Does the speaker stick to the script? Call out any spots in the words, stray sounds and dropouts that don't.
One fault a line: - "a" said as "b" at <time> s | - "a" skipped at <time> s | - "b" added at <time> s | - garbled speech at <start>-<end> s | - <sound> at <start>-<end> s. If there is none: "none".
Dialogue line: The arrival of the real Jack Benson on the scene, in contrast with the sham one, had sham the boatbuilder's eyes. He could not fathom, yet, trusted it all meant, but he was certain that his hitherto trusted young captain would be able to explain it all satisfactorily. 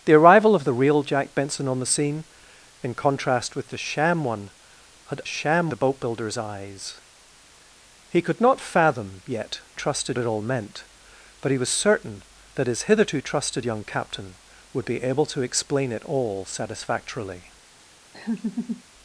- laugh at 18.1-18.8 s